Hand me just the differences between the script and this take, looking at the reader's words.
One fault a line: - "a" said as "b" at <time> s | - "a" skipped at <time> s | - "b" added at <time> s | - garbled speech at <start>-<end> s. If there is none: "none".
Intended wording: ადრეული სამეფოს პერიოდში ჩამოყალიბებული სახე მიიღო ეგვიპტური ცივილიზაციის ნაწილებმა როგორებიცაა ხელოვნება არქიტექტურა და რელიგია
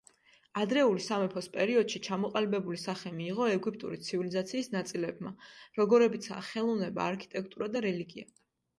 none